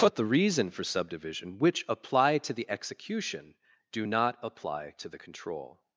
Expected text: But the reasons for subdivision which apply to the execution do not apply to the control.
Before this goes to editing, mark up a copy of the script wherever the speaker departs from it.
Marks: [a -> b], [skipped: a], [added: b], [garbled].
But the [reasons -> reason] for subdivision which apply to the execution do not apply to the control.